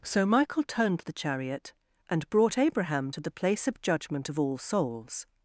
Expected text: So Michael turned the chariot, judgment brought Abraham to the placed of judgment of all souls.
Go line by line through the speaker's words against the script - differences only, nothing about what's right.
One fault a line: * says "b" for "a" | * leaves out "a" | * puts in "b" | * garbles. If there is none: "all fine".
* says "and" for "judgment"
* says "place" for "placed"